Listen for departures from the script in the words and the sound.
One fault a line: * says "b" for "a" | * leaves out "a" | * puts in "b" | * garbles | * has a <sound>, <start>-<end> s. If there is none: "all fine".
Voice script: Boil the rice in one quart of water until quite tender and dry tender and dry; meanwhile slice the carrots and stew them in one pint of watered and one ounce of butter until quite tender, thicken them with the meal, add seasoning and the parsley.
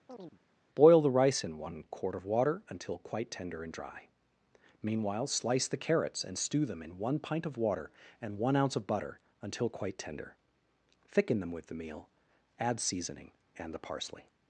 * has a chirp, 0.1-0.4 s
* leaves out "tender and dry"
* says "water" for "watered"